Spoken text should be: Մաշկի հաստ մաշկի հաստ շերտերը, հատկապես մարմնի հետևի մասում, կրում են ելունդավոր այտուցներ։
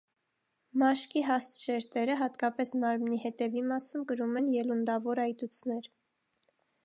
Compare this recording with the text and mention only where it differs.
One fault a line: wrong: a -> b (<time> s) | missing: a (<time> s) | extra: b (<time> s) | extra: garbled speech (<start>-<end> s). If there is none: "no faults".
missing: մաշկի հաստ (1.6 s)